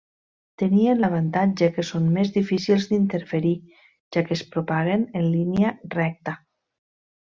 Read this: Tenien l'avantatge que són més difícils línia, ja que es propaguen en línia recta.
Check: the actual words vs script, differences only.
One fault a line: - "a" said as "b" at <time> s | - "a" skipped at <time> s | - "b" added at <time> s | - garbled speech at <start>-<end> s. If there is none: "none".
- "línia" said as "d'interferir" at 2.9 s